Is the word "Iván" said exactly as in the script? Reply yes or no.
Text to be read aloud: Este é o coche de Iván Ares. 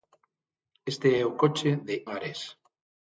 no